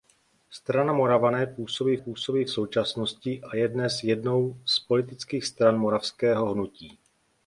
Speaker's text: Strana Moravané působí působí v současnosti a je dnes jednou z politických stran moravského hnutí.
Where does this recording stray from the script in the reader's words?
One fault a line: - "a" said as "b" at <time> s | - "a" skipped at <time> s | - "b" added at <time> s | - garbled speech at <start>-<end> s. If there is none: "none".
none